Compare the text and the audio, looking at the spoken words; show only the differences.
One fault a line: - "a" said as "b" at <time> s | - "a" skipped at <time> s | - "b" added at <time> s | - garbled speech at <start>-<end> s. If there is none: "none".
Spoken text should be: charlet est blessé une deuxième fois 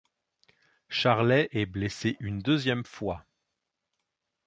none